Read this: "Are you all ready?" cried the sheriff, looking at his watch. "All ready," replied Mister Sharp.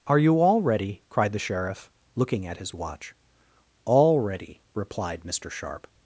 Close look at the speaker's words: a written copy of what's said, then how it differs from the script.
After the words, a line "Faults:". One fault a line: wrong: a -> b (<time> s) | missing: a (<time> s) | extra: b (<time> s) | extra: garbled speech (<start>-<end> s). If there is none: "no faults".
"Are you all ready?" cried the sheriff, looking at his watch. "All ready," replied Mister Sharp.
Faults:
no faults